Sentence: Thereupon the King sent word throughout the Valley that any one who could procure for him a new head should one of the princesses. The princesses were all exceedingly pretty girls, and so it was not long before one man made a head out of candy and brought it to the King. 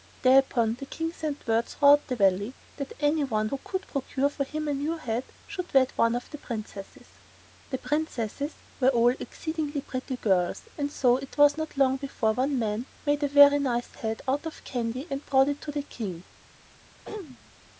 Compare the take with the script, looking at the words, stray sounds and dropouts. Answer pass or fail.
fail